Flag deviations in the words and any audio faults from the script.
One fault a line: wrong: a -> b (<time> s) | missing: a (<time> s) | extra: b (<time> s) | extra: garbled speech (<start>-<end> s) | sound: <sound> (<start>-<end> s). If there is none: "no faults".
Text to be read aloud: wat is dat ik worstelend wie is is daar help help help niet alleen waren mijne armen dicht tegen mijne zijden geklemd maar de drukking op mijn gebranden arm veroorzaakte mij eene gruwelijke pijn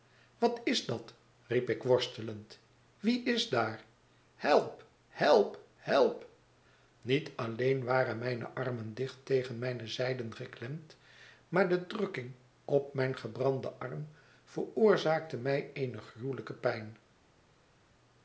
extra: riep (1.5 s)
missing: is (3.5 s)